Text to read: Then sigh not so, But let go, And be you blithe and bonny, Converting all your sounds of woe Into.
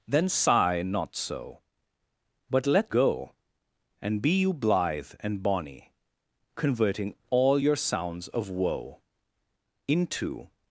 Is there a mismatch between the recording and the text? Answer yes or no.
no